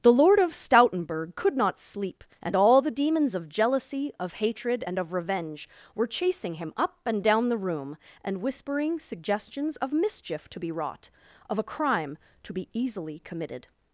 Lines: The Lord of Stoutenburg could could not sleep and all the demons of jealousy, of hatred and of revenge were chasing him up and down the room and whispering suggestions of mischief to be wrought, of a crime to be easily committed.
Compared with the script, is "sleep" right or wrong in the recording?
right